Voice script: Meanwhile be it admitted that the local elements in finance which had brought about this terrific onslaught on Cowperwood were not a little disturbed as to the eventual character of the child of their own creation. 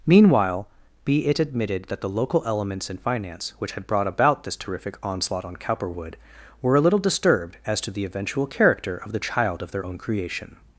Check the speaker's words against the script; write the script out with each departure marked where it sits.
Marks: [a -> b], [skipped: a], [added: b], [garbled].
Meanwhile be it admitted that the local elements in finance which had brought about this terrific onslaught on Cowperwood were [skipped: not] a little disturbed as to the eventual character of the child of their own creation.